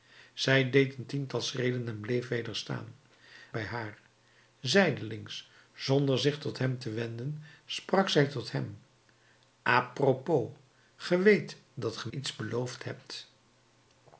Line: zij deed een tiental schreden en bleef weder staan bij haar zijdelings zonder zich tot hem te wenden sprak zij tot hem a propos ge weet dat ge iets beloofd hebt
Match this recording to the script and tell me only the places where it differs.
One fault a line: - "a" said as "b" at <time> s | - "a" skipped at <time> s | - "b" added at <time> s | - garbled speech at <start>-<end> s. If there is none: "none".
none